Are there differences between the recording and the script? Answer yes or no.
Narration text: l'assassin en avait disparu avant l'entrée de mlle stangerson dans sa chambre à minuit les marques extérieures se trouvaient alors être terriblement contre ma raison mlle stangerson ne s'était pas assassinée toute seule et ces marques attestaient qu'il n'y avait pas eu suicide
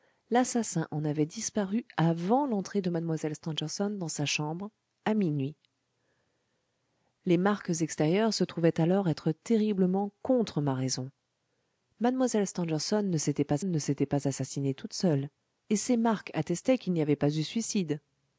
yes